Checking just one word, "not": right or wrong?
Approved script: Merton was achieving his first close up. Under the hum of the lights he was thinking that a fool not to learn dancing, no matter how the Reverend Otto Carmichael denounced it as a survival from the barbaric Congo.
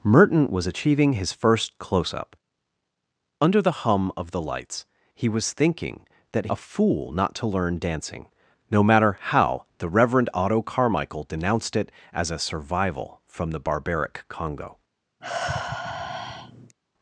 right